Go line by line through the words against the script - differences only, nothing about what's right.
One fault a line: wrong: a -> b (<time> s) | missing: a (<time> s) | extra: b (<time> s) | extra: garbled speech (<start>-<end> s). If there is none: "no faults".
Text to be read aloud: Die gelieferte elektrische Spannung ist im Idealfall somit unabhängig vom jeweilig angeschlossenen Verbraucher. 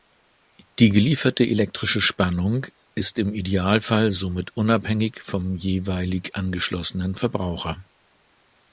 no faults